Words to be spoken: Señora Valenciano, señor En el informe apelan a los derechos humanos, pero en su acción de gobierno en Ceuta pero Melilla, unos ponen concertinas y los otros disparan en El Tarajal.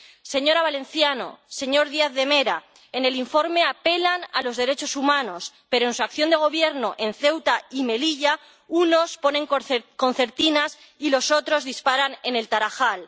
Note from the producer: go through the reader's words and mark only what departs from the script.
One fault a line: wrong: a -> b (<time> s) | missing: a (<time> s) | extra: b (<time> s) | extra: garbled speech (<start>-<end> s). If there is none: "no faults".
extra: Díaz de Mera (1.9 s)
wrong: pero -> y (7.7 s)